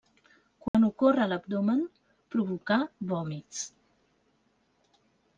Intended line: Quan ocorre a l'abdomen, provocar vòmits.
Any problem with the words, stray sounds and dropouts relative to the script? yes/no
yes